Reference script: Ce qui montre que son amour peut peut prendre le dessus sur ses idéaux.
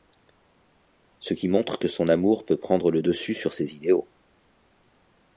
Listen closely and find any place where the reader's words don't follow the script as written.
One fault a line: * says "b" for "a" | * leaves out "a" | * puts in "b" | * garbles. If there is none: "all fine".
* leaves out "peut"